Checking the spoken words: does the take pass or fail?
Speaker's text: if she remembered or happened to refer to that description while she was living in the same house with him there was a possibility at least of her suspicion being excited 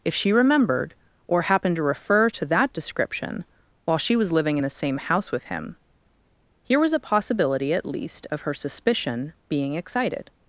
fail